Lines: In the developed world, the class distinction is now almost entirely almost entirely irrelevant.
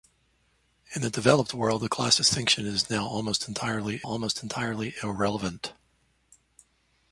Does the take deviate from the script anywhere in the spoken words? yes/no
no